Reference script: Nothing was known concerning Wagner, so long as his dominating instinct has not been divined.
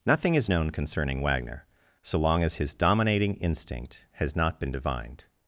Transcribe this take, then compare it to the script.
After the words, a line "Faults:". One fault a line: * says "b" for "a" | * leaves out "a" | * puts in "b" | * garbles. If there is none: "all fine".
Nothing is known concerning Wagner, so long as his dominating instinct has not been divined.
Faults:
* says "is" for "was"